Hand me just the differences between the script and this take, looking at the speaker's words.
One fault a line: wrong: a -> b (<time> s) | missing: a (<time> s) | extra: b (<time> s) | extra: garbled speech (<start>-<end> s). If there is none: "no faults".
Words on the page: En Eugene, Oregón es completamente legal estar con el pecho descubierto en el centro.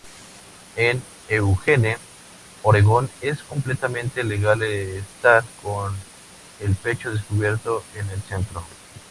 no faults